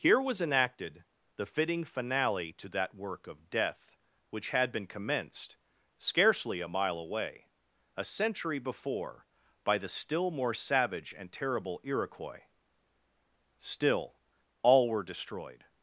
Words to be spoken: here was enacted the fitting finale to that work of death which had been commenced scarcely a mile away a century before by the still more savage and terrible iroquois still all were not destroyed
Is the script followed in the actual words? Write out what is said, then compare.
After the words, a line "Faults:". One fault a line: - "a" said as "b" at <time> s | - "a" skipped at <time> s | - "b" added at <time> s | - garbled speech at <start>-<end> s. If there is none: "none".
here was enacted the fitting finale to that work of death which had been commenced scarcely a mile away a century before by the still more savage and terrible iroquois still all were destroyed
Faults:
- "not" skipped at 15.0 s